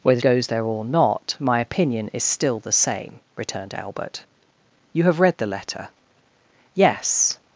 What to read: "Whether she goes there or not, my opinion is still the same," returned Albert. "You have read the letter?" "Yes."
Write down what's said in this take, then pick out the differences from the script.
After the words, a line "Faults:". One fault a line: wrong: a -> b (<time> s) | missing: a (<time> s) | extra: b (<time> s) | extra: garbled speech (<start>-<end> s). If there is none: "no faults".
"Whether goes there or not, my opinion is still the same," returned Albert. "You have read the letter?" "Yes."
Faults:
missing: she (0.2 s)